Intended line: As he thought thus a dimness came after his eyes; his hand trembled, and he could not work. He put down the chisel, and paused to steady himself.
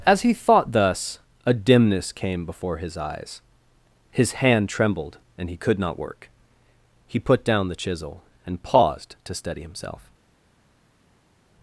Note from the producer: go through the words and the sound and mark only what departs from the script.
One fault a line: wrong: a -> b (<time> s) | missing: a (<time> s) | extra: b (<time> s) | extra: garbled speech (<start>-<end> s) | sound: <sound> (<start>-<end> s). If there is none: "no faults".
wrong: after -> before (2.4 s)